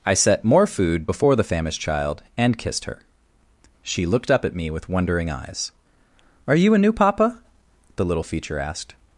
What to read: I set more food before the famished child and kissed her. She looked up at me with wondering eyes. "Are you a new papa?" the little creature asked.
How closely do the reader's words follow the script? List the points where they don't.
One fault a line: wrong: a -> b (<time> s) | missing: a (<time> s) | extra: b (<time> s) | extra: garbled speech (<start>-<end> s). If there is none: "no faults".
wrong: creature -> feature (8.2 s)